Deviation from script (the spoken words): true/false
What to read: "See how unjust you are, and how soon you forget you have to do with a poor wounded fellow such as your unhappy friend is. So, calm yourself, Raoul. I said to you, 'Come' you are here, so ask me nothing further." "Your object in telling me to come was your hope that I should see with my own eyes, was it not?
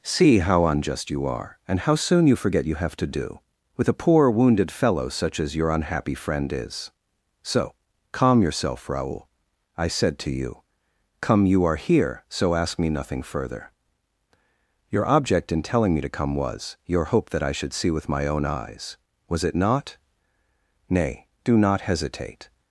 true